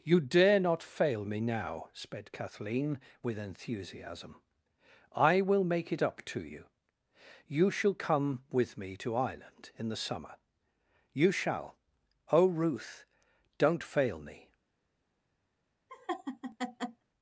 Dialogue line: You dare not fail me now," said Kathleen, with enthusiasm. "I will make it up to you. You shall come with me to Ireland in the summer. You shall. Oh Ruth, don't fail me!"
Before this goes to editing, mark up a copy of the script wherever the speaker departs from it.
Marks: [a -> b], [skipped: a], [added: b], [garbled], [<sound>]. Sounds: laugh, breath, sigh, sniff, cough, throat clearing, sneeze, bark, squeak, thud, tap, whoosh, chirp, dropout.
You dare not fail me now," [said -> sped] Kathleen, with enthusiasm. "I will make it up to you. You shall come with me to Ireland in the summer. You shall. Oh Ruth, don't fail me!" [laugh]